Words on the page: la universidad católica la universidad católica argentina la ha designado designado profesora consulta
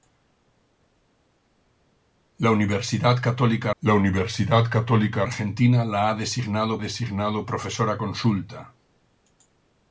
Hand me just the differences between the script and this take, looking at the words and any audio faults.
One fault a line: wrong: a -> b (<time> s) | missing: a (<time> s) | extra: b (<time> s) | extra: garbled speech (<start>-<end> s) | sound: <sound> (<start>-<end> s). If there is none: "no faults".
no faults